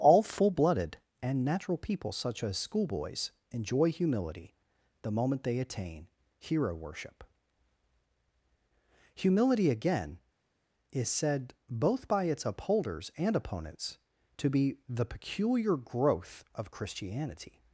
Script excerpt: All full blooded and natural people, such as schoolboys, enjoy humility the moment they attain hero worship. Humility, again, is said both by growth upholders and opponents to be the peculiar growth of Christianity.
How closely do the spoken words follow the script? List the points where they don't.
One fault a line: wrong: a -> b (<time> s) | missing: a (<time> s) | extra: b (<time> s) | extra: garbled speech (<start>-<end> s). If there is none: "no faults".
wrong: growth -> its (12.2 s)